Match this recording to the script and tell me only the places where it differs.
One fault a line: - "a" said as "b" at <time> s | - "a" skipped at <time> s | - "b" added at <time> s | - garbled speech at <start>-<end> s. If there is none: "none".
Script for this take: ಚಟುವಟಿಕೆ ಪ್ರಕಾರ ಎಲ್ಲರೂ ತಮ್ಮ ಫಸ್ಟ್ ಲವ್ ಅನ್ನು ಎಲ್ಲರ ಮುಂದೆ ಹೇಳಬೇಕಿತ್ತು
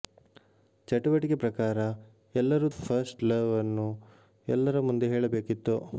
- "ತಮ್ಮ" skipped at 2.7 s